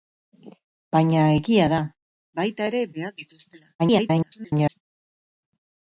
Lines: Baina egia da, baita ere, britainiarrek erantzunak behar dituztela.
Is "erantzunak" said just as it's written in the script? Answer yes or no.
no